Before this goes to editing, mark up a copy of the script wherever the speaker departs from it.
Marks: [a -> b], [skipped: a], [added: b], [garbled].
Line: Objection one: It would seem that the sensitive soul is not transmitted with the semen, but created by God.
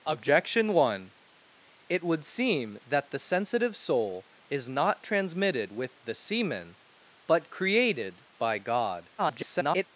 Objection one: It would seem that the sensitive soul is not transmitted with the semen, but created by God. [garbled]